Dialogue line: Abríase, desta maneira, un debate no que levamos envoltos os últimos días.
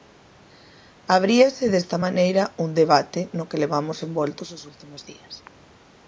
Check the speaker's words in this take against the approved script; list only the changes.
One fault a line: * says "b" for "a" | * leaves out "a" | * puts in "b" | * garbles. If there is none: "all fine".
all fine